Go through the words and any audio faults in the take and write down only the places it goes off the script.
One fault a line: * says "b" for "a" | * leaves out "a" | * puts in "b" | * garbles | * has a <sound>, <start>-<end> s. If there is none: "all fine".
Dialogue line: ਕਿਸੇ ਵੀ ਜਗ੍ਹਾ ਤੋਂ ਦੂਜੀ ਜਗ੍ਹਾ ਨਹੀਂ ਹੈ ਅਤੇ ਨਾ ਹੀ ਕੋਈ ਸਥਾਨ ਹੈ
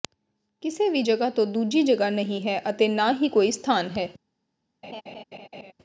* has a laugh, 4.8-5.7 s